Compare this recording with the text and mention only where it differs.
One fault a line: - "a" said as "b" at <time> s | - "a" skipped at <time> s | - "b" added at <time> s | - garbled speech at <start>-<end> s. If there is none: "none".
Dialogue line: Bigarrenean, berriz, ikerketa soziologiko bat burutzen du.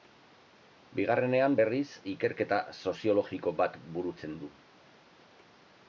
none